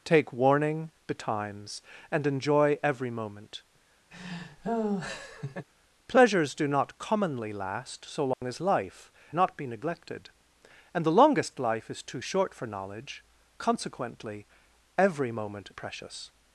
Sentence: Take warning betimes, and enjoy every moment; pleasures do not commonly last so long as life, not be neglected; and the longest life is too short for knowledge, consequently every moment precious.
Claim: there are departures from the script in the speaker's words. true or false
false